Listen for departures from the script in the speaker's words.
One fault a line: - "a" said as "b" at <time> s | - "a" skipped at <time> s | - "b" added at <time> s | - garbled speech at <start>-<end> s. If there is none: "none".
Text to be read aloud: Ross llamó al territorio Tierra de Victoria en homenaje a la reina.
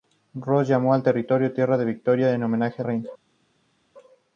- "la" skipped at 2.9 s